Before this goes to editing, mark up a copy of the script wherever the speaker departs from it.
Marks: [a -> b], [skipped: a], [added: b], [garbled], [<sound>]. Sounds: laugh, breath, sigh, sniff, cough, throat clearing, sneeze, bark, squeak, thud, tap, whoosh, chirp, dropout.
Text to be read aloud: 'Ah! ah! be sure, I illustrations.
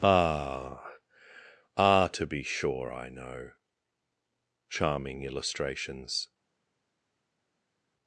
'Ah! ah! [added: to] be sure, I [added: know Charming] illustrations.